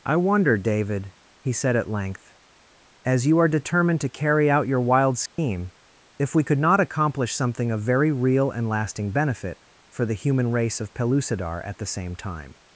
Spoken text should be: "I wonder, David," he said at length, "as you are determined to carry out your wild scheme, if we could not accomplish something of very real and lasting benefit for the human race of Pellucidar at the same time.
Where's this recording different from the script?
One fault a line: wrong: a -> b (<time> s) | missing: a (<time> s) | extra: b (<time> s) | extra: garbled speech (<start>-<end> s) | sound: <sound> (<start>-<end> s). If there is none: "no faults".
sound: dropout (5.3-5.4 s)